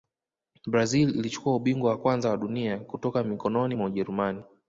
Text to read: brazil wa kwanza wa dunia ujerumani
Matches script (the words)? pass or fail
fail